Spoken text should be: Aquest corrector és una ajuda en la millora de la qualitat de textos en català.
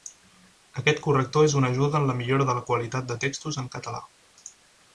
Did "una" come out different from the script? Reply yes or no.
no